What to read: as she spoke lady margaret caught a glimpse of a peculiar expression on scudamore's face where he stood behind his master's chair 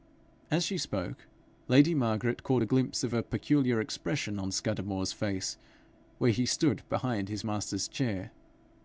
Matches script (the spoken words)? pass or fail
pass